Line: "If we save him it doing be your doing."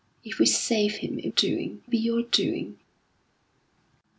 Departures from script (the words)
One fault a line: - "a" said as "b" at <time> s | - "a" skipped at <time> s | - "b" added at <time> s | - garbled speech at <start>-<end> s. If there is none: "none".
none